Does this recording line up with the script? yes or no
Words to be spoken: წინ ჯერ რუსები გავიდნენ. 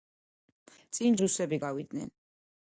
no